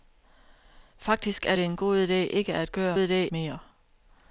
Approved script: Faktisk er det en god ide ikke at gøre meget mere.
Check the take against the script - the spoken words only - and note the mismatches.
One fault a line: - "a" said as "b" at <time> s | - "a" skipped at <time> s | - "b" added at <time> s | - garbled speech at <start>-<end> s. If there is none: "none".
- "meget" said as "ide" at 3.0 s